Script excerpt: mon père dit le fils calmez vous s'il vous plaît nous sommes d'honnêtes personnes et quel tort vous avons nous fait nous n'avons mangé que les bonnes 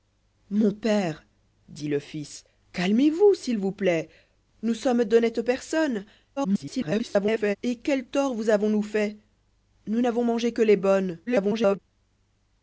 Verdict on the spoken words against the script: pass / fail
fail